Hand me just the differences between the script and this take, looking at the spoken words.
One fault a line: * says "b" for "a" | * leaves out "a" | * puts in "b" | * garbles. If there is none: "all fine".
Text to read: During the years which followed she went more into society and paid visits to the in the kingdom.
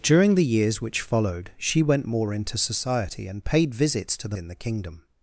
all fine